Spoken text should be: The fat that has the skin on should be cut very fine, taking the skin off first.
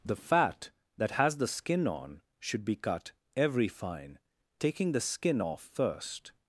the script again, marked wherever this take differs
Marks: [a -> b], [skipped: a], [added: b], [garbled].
The fat that has the skin on should be cut [very -> every] fine, taking the skin off first.